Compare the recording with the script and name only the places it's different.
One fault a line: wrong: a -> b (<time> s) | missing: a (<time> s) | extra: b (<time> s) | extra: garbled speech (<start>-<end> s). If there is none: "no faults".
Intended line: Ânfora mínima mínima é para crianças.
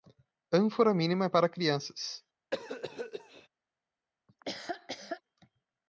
missing: mínima (1.2 s)